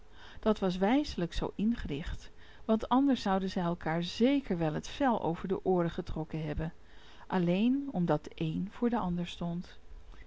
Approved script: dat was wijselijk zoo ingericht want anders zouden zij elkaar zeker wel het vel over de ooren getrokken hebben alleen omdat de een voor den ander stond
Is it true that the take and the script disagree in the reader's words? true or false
false